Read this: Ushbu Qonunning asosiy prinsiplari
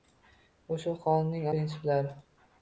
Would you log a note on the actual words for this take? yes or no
yes